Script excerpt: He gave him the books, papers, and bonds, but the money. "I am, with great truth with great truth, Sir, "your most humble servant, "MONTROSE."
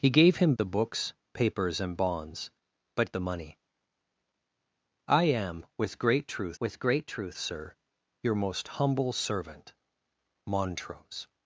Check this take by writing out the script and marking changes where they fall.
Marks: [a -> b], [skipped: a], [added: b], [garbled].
He gave him the books, papers, and bonds, but the money. "I am, with great truth with great truth, Sir, "your most humble servant, "MONTROSE."